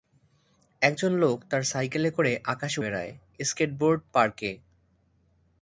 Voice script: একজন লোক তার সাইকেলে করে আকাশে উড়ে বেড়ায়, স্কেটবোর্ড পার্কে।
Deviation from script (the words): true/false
true